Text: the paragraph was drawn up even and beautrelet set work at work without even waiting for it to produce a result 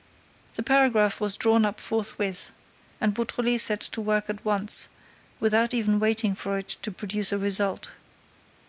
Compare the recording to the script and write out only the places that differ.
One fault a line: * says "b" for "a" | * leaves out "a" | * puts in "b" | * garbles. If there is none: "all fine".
* says "forthwith" for "even"
* puts in "to"
* says "once" for "work"